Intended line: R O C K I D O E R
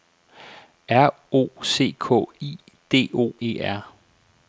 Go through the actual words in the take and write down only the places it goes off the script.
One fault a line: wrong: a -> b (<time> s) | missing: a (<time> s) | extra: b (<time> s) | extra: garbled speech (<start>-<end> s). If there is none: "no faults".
no faults